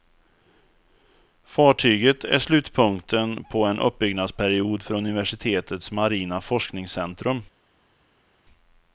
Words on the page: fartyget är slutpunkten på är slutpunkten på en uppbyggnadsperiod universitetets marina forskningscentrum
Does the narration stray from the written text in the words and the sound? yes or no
yes